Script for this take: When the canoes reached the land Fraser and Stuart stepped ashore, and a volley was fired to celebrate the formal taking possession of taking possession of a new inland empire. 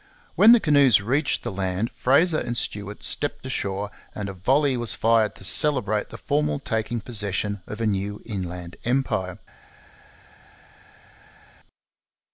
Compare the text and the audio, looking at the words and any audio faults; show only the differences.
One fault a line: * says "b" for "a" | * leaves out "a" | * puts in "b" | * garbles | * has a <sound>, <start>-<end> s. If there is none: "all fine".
* leaves out "taking possession of"